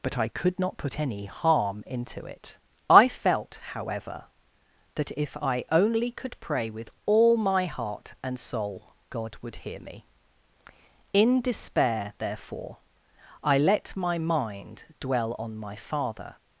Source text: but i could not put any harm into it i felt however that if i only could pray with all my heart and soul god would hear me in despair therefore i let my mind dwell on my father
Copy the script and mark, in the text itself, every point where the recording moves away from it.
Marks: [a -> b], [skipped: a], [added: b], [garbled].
but i could not put any harm into it i felt however that if i only could pray with all my heart and soul god would hear me in despair therefore i let my mind dwell on my father